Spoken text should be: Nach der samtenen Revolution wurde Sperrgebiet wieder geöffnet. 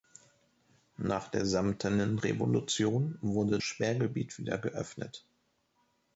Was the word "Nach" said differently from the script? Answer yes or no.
no